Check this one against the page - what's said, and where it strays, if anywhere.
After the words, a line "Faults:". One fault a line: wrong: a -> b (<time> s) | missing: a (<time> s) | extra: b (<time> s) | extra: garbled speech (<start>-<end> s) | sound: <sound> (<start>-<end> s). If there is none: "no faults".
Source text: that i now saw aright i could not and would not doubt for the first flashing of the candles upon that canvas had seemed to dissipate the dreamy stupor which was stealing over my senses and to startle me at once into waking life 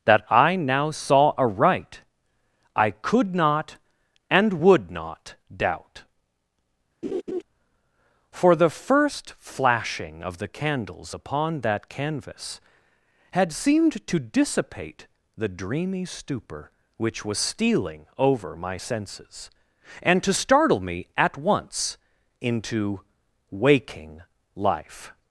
that i now saw aright i could not and would not doubt for the first flashing of the candles upon that canvas had seemed to dissipate the dreamy stupor which was stealing over my senses and to startle me at once into waking life
Faults:
sound: laugh (7.0-7.4 s)